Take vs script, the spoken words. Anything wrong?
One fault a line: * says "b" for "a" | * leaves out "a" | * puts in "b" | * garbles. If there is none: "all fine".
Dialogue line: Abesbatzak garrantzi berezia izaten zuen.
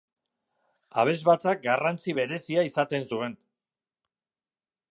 all fine